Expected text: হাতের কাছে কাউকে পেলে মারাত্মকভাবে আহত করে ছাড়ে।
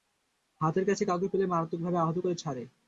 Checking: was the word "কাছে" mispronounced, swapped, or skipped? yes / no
no